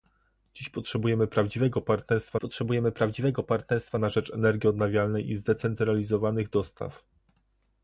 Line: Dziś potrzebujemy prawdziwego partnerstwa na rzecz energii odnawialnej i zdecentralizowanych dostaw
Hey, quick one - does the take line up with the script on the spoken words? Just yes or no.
no